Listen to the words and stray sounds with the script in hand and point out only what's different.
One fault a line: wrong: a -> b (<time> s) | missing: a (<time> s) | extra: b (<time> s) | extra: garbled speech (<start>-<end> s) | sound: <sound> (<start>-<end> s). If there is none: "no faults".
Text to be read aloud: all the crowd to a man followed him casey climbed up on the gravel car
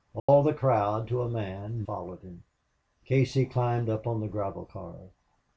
sound: dropout (0.2-0.3 s)